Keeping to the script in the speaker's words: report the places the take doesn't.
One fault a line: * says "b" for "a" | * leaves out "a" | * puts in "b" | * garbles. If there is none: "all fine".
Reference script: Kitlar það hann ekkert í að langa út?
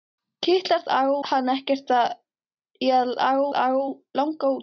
* says "langa" for "það"
* puts in "langa"